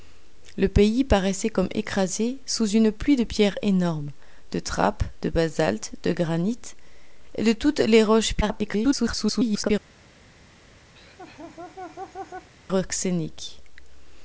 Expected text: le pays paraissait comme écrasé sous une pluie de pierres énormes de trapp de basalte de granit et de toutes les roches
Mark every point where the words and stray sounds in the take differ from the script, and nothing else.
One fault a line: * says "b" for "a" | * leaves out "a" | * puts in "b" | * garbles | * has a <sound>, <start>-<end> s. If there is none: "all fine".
* garbles
* has a laugh, 11.0-12.5 s